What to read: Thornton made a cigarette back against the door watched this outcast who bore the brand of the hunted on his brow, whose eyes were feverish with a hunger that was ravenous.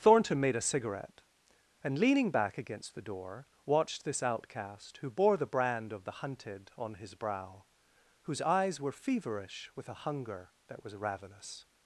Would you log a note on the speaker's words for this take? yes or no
yes